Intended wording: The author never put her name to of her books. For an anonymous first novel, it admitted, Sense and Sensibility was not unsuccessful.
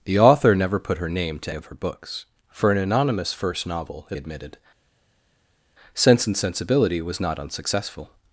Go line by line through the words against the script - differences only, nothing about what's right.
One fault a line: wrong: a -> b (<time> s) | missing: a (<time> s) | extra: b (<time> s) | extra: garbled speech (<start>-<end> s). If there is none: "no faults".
no faults